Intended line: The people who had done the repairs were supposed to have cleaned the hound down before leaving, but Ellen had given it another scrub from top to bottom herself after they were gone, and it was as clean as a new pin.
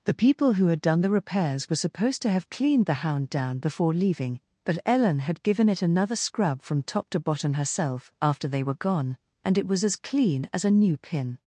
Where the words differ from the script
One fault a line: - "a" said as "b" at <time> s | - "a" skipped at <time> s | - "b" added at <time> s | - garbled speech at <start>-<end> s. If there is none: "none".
none